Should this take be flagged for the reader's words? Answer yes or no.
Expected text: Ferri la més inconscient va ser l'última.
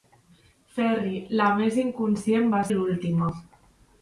yes